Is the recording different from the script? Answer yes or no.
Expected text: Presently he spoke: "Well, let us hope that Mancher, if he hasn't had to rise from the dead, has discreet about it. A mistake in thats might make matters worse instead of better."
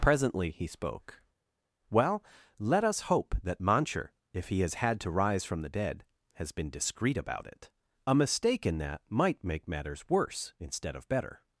yes